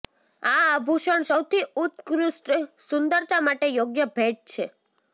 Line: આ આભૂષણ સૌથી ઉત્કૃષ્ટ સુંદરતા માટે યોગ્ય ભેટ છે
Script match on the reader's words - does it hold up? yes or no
yes